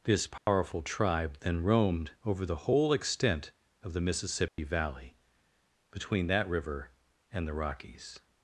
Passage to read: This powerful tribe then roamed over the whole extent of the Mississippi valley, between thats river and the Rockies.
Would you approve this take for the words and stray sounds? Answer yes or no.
no